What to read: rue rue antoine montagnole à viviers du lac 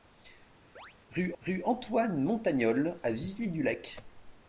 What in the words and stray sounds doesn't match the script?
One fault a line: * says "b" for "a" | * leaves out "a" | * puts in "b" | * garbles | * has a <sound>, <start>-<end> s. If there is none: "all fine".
* has a chirp, 0.8-0.9 s